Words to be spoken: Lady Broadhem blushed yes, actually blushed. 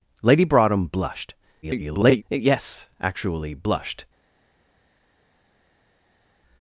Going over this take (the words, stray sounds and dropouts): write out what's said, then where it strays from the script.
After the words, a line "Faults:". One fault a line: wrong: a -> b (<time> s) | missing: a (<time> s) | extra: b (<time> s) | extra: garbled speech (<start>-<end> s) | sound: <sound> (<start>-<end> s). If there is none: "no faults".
Lady Broadhem blushed [garbled] yes, actually blushed.
Faults:
extra: garbled speech (1.6-2.2 s)